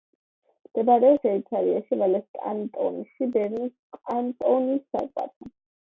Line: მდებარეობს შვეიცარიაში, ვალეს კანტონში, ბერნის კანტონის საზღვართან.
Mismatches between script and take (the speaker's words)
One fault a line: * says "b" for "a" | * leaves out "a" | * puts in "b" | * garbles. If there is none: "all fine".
all fine